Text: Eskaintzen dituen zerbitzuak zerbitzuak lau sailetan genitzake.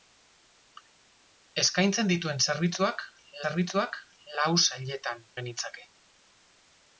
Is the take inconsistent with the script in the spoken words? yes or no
no